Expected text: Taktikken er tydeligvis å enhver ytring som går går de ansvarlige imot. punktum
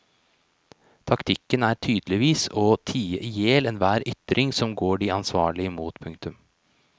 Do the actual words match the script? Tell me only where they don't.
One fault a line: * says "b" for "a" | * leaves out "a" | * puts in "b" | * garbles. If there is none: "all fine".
* puts in "tie ihjel"
* leaves out "går"